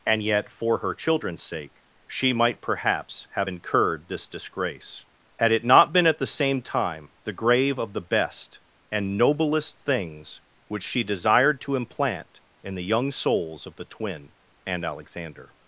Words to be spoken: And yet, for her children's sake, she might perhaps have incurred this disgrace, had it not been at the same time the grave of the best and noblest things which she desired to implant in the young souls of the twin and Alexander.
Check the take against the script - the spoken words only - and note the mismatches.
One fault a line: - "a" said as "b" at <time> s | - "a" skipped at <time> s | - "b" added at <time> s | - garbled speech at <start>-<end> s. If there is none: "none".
none